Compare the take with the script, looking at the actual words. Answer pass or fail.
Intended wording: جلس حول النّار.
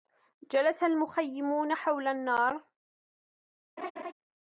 fail